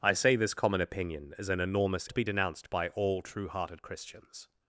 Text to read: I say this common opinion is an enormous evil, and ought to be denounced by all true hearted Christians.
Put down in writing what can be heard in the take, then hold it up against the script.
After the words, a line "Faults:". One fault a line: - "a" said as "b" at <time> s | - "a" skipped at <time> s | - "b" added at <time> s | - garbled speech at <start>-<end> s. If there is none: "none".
I say this common opinion is an enormous to be denounced by all true hearted Christians.
Faults:
- "evil and ought" skipped at 2.1 s